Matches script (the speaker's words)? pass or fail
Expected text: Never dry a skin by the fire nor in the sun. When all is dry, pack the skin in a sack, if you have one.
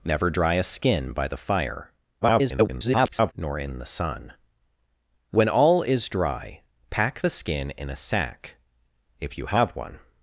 fail